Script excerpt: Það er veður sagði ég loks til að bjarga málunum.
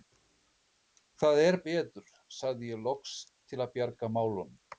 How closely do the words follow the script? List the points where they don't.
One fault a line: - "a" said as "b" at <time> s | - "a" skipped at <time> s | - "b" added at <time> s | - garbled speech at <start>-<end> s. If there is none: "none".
none